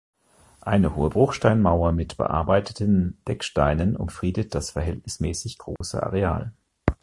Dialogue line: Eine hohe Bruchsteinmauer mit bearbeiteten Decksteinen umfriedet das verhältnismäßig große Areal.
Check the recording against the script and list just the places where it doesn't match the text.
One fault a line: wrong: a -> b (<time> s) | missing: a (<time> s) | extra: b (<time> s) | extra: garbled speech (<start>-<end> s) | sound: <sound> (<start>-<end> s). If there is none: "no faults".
sound: dropout (5.8-5.8 s)